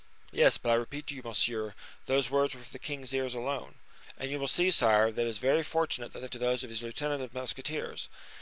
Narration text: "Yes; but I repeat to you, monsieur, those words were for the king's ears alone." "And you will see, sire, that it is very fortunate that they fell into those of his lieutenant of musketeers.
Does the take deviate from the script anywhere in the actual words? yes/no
yes